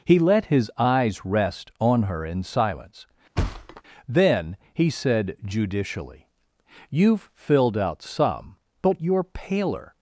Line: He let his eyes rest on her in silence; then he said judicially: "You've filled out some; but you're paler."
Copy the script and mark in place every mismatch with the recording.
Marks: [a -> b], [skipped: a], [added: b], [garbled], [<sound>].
He let his eyes rest on her in silence; [thud] then he said judicially: "You've filled out some; but you're paler."